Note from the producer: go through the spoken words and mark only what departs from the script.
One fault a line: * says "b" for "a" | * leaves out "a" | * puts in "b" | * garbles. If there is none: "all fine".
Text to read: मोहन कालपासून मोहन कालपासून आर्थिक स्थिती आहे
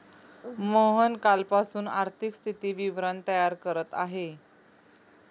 * says "आर्थिक स्थिती विवरण तयार करत" for "मोहन कालपासून आर्थिक स्थिती"